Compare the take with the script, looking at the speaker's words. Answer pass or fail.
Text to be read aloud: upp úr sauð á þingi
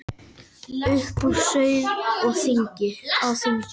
pass